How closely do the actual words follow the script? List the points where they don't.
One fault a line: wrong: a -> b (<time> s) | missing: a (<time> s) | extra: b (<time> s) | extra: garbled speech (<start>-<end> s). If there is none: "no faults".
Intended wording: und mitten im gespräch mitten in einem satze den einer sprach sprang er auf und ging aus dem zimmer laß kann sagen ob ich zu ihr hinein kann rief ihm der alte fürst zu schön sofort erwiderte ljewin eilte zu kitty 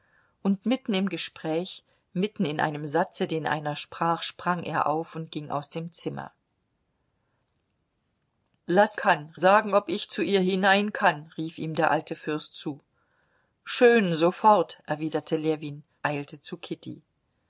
no faults